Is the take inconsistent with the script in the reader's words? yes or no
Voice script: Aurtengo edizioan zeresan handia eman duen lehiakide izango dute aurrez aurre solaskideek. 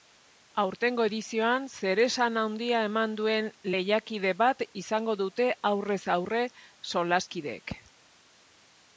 yes